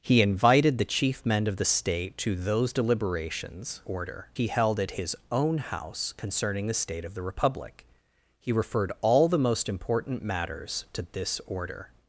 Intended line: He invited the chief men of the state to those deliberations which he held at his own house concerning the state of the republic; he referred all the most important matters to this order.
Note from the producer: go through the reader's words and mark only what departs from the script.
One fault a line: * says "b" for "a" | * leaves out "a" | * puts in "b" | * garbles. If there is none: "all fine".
* says "order" for "which"